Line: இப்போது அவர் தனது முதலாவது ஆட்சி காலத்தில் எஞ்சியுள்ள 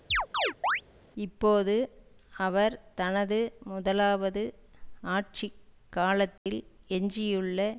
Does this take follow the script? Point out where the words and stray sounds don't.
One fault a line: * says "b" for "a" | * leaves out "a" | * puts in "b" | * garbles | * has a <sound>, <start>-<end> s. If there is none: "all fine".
* has a chirp, 0.1-0.8 s
* has a dropout, 6.4-6.5 s